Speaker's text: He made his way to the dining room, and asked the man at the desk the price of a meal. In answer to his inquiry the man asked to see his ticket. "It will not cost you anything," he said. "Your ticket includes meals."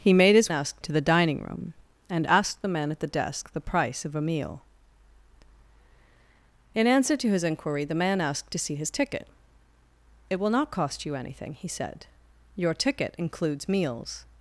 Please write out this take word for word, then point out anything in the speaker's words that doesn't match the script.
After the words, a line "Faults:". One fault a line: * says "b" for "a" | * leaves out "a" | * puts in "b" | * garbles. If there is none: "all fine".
He made his asked to the dining room, and asked the man at the desk the price of a meal. In answer to his inquiry the man asked to see his ticket. "It will not cost you anything," he said. "Your ticket includes meals."
Faults:
* says "asked" for "way"